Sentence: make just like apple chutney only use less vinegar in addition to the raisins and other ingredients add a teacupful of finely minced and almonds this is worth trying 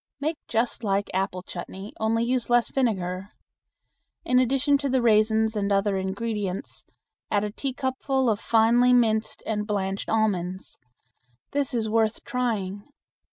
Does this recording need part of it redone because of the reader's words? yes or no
yes